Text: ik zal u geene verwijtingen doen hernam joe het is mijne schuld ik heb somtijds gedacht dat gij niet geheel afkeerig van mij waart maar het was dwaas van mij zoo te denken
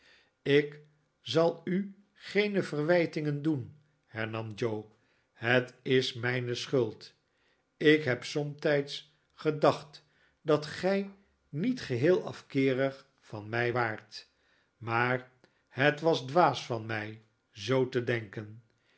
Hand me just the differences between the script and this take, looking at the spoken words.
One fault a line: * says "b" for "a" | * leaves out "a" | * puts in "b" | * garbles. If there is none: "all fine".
all fine